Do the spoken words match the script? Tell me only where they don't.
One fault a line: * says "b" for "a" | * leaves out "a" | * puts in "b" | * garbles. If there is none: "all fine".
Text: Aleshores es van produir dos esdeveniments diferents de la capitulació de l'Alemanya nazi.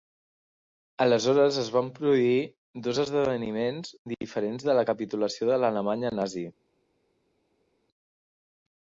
all fine